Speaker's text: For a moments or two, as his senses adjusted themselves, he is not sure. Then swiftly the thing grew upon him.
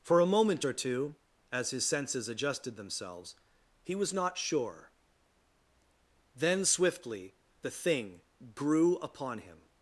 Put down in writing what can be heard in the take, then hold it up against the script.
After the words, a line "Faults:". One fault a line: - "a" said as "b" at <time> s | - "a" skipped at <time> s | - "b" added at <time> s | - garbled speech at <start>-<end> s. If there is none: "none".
For a moment or two, as his senses adjusted themselves, he was not sure. Then swiftly the thing grew upon him.
Faults:
- "moments" said as "moment" at 0.2 s
- "is" said as "was" at 3.9 s